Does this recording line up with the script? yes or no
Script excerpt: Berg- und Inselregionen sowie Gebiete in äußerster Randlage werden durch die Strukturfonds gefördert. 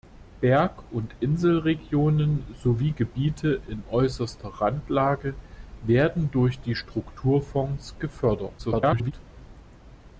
no